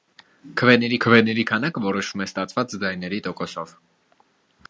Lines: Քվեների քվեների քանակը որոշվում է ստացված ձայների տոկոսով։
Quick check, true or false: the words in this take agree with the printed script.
true